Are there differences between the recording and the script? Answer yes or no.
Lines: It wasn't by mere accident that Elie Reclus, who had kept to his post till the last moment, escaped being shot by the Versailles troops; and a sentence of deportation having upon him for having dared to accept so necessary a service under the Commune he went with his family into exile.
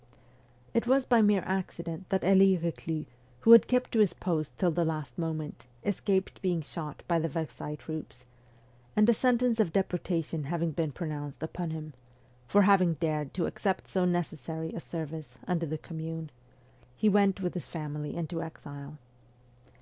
yes